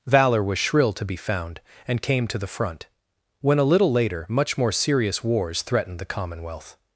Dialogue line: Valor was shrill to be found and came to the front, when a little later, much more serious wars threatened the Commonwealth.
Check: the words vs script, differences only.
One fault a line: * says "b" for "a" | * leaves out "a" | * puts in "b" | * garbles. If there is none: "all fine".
all fine